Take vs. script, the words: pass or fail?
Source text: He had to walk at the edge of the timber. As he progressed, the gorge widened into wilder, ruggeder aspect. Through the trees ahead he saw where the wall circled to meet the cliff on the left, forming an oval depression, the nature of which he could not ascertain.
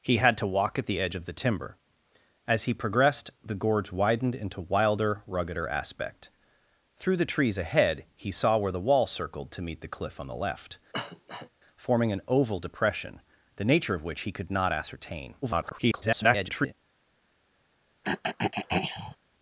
fail